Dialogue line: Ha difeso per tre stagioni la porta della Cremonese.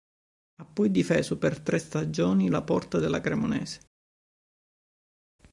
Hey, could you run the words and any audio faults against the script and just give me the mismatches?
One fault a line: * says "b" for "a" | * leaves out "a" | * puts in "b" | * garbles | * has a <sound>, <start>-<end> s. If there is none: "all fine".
* puts in "poi"